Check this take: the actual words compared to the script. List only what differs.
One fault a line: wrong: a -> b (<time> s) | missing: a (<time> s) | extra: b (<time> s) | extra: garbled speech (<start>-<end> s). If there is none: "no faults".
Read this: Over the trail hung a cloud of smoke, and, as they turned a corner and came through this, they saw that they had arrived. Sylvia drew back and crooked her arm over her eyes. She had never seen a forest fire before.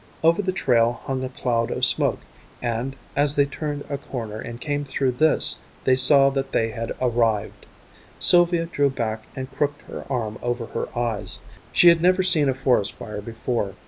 no faults